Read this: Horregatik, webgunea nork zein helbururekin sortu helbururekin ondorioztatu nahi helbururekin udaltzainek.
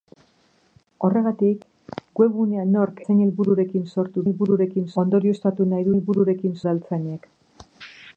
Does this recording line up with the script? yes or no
yes